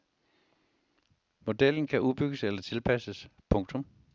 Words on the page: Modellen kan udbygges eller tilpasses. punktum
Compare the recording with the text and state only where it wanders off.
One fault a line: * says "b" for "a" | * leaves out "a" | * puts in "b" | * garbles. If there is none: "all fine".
all fine